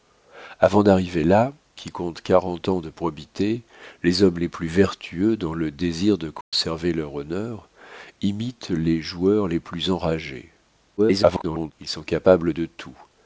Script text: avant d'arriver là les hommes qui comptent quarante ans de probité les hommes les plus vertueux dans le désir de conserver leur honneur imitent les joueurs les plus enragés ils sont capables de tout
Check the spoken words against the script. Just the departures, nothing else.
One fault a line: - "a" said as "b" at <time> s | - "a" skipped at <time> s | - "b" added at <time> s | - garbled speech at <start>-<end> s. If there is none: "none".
- "les hommes" skipped at 1.5 s
- garbled speech at 11.0-11.7 s